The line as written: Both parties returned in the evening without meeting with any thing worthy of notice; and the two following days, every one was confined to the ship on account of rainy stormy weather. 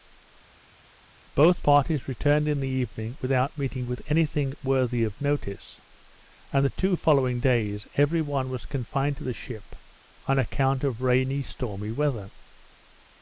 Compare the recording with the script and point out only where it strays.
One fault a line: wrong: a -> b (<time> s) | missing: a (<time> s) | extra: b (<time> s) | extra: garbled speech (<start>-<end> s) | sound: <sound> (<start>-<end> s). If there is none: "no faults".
no faults